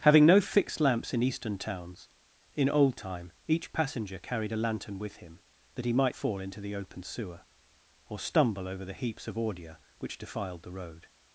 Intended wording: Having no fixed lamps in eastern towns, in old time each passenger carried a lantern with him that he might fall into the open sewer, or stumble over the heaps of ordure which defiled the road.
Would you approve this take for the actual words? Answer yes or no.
yes